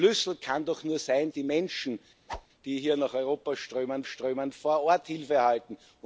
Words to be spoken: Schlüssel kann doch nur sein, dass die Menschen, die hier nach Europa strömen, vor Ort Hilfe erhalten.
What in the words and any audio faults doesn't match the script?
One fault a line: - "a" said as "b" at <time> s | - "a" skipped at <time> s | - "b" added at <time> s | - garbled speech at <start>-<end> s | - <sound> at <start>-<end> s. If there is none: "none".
- "dass" skipped at 1.3 s
- whoosh at 2.3-2.5 s
- "strömen" added at 4.0 s